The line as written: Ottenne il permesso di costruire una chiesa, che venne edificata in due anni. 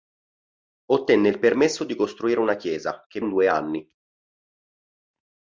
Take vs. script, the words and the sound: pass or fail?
fail